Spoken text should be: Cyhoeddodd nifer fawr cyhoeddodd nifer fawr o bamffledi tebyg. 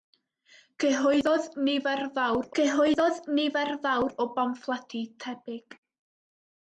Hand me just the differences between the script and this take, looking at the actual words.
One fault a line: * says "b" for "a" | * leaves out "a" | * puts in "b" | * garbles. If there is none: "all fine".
all fine